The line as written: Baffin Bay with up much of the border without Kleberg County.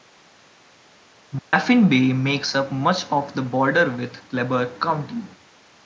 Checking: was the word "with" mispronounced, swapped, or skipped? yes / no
yes